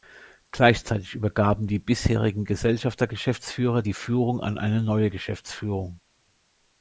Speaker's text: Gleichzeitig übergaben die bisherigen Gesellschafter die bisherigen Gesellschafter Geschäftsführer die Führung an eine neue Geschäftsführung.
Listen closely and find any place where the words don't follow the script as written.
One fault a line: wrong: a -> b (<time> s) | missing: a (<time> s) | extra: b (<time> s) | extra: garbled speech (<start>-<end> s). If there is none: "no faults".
missing: die bisherigen Gesellschafter (3.0 s)